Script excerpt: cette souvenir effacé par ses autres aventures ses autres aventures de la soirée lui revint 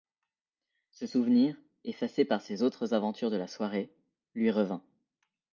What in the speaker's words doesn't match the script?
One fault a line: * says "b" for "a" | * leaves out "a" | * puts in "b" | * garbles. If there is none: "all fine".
* says "ce" for "cette"
* leaves out "ses autres aventures"